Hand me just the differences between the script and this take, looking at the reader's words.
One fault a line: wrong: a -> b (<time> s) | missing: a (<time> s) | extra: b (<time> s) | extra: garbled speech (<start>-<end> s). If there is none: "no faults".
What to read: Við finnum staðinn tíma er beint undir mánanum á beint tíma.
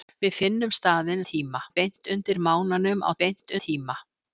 no faults